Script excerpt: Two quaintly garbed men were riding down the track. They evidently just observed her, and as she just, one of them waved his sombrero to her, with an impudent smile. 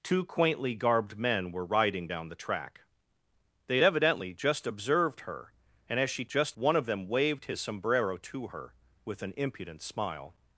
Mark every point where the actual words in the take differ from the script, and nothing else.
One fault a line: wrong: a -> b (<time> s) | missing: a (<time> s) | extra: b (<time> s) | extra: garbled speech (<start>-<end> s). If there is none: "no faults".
no faults